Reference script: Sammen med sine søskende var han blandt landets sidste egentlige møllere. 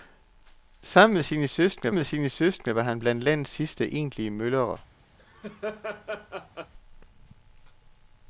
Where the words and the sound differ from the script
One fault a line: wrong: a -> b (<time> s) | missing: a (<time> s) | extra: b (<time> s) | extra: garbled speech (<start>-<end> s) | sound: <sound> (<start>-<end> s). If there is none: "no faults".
extra: med sine søskende (1.9 s)
sound: laugh (5.2-6.7 s)